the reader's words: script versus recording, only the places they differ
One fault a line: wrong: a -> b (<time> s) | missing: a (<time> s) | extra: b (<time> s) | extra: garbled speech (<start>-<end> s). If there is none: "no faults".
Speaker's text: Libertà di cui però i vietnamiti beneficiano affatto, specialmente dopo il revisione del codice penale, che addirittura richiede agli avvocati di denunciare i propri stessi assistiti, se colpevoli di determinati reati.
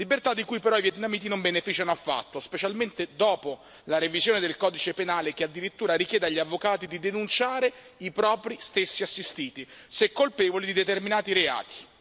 extra: non (1.3 s)
wrong: il -> la (3.8 s)